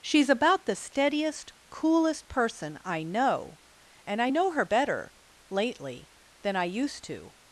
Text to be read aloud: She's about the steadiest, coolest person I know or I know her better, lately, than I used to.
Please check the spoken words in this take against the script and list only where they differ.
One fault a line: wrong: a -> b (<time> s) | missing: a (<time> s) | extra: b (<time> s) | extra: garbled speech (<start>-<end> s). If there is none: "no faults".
wrong: or -> and (4.1 s)